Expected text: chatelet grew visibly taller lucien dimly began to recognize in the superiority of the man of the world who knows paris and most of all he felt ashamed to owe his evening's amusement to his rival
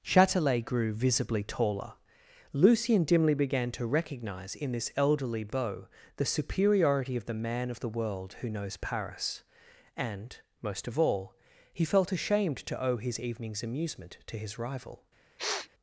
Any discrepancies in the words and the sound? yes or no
yes